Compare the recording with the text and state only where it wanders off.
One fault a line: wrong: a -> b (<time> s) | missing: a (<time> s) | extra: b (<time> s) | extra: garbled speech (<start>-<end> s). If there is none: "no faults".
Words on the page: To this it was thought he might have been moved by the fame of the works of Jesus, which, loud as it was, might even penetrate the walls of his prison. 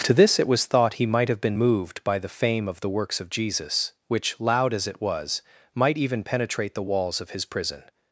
no faults